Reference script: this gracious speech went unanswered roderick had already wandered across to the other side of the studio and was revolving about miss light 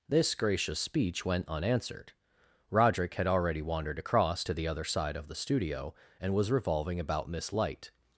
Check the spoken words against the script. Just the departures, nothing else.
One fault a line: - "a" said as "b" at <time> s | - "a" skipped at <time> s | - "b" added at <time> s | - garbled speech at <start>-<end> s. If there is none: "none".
none